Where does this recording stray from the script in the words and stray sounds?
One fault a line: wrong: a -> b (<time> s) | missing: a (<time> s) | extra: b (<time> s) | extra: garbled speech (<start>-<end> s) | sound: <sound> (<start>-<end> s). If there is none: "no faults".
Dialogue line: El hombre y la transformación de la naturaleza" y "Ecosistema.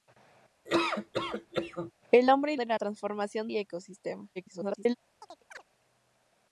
sound: laugh (0.7-1.9 s)
missing: la transformación (2.6 s)
wrong: naturaleza -> transformación (2.7 s)
extra: garbled speech (4.4-5.0 s)
sound: chirp (5.2-5.6 s)